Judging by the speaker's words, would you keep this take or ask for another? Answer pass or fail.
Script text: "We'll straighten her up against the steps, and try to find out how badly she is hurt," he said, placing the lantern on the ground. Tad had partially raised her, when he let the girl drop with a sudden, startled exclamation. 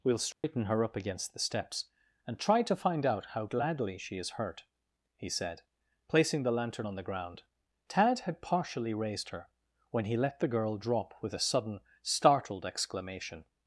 fail